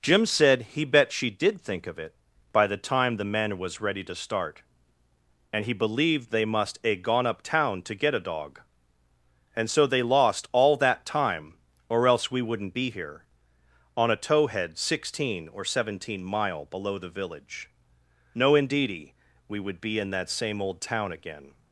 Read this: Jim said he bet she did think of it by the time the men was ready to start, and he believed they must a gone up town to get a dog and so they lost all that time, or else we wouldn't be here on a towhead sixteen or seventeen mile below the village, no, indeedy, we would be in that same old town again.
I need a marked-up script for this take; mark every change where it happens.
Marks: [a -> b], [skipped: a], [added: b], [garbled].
Jim said he bet she did think of it by the time the men was ready to start, and he believed they must a gone up town to get a dog and so they lost all that time, or else we wouldn't be here on a towhead sixteen or seventeen mile below the village, no, indeedy, we would be in that same old town again.